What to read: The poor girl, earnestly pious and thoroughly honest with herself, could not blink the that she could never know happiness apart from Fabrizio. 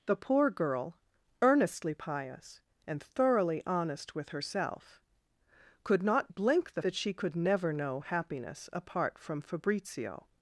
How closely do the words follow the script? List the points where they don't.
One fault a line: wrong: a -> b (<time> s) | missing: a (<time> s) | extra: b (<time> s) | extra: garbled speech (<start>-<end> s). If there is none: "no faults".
no faults